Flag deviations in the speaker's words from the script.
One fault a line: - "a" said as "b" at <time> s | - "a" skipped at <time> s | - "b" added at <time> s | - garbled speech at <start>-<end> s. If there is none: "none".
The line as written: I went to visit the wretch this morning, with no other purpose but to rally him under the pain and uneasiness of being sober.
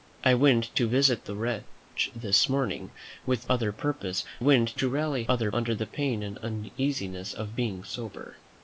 - "no" skipped at 3.5 s
- "but" said as "went" at 4.4 s
- "him" said as "other" at 5.2 s